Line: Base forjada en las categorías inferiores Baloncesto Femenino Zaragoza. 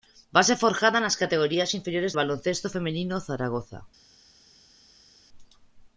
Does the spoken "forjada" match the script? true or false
true